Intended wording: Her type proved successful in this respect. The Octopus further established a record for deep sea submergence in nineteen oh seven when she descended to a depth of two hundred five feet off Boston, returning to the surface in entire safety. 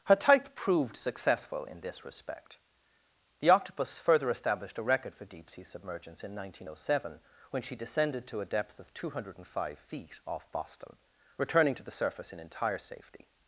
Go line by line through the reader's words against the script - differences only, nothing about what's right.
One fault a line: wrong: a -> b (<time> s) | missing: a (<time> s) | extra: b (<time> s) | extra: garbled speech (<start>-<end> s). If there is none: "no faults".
no faults